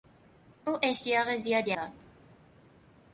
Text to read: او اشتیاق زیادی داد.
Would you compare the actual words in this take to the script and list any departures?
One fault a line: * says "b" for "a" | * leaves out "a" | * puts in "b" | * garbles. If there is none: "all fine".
all fine